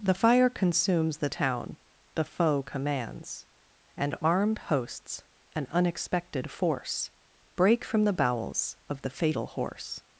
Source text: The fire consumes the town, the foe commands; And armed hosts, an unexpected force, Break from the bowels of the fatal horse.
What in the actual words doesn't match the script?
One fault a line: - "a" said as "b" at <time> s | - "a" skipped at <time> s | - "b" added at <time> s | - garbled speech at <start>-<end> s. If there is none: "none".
none